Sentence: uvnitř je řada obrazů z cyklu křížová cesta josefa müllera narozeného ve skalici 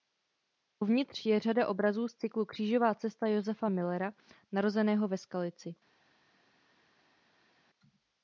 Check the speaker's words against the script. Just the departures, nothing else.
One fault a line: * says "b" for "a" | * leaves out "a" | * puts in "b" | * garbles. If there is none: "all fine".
all fine